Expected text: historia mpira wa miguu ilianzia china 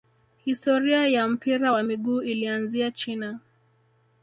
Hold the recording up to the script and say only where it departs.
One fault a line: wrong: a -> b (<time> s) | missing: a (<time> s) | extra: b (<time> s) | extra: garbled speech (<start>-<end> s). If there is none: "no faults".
extra: ya (1.1 s)